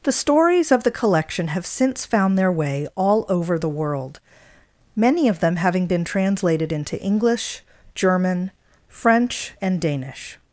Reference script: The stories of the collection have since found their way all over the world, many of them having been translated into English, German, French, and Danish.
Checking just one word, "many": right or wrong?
right